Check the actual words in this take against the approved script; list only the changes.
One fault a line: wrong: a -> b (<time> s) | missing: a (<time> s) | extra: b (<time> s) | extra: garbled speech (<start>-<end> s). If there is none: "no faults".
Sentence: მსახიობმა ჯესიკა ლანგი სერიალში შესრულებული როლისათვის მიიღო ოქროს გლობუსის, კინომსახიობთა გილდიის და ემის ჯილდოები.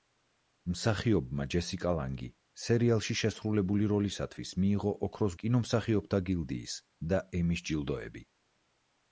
missing: გლობუსის (5.4 s)